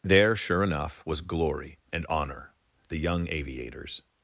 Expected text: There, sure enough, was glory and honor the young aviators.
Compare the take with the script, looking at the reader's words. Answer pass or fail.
pass